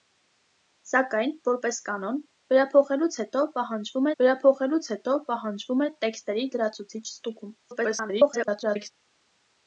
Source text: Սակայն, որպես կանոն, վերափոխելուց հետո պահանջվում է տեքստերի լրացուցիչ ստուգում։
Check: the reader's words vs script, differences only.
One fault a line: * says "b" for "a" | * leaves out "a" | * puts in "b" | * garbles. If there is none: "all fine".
* puts in "վերափոխելուց հետո պահանջվում"
* garbles